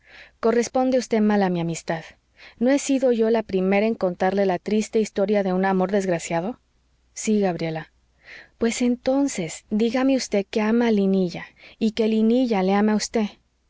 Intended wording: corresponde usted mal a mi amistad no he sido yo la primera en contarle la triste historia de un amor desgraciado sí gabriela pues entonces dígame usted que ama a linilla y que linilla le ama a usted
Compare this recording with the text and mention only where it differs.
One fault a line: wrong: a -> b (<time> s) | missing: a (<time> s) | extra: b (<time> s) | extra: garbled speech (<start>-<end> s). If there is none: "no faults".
no faults